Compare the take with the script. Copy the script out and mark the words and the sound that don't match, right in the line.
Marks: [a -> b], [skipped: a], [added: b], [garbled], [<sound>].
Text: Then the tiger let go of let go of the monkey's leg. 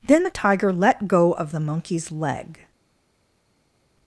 Then the tiger let go of [skipped: let go of] the monkey's leg.